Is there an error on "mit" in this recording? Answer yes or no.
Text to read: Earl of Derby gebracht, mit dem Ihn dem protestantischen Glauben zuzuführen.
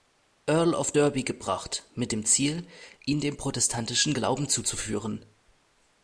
no